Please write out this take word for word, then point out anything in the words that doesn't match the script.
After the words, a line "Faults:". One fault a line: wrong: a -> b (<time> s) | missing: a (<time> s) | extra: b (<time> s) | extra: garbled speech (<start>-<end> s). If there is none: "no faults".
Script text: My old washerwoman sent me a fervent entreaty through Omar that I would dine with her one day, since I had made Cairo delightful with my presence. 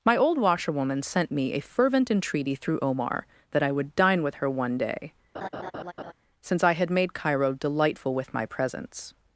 My old washerwoman sent me a fervent entreaty through Omar that I would dine with her one day, since I had made Cairo delightful with my presence.
Faults:
no faults